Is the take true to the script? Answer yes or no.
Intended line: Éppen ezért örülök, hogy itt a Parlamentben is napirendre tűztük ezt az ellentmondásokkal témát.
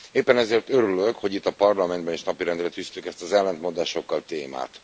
yes